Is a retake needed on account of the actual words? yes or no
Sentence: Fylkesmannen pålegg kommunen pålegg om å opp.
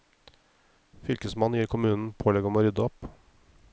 yes